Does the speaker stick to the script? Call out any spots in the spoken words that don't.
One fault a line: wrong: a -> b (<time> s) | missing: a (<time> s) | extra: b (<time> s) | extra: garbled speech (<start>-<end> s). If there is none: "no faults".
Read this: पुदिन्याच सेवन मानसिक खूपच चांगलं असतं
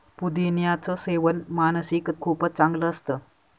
no faults